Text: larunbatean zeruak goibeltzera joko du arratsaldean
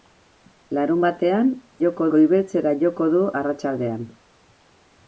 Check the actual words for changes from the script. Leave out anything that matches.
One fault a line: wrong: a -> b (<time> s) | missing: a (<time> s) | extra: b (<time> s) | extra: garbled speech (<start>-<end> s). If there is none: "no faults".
wrong: zeruak -> joko (1.8 s)